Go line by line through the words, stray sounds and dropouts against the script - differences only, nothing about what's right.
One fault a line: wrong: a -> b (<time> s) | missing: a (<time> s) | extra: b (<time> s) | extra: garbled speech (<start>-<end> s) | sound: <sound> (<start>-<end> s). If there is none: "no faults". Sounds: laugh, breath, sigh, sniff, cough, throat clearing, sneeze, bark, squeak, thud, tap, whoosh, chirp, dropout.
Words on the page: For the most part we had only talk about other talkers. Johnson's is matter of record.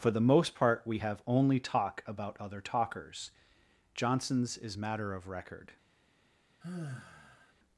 wrong: had -> have (0.9 s)
sound: sigh (6.6-7.5 s)